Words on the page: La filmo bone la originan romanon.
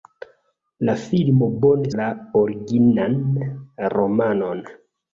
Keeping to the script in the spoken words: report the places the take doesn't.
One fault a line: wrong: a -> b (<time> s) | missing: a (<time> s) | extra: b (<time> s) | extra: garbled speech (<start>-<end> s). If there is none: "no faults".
no faults